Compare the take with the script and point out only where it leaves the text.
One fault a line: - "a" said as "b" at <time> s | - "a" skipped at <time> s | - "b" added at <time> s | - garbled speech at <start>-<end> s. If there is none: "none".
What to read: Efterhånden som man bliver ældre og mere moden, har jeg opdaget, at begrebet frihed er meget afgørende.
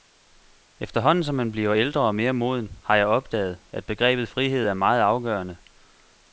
none